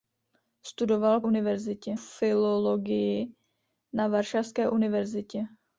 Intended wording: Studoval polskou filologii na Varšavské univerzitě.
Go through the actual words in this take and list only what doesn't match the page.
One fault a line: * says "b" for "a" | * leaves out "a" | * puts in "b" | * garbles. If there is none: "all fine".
* says "univerzitě" for "polskou"